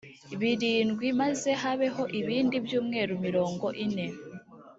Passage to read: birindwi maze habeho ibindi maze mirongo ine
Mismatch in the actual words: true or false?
true